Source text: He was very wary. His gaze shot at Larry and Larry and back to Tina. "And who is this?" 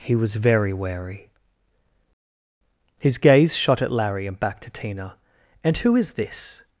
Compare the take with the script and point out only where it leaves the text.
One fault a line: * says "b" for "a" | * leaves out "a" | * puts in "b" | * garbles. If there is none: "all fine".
* leaves out "Larry and"